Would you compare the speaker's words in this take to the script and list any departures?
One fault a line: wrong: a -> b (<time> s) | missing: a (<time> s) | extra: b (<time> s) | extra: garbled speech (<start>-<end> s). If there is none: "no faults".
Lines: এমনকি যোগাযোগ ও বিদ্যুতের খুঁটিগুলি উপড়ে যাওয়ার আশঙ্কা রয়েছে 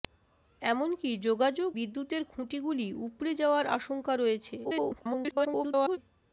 missing: ও (1.7 s)
extra: garbled speech (4.6-6.0 s)